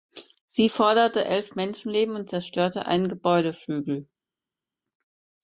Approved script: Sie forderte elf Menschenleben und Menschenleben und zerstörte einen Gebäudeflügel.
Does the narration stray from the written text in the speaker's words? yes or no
yes